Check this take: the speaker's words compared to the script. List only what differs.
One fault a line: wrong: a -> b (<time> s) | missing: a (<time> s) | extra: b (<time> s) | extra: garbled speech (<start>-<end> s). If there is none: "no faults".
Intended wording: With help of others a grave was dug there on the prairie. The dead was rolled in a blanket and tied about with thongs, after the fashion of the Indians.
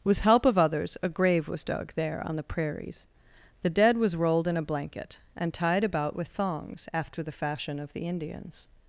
wrong: prairie -> prairies (2.4 s)